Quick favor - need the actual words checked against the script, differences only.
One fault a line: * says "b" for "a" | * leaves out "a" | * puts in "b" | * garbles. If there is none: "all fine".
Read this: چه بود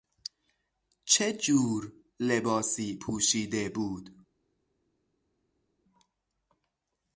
* puts in "جور لباسی پوشیده"